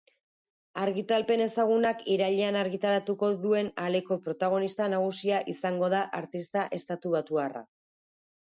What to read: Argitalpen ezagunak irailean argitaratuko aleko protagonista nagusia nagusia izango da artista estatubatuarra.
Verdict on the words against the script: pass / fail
fail